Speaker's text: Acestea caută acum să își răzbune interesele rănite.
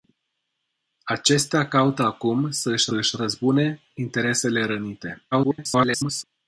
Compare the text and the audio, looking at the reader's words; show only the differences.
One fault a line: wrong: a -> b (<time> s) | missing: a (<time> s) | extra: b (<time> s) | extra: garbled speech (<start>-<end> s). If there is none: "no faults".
extra: își (2.9 s)
extra: garbled speech (5.3-6.2 s)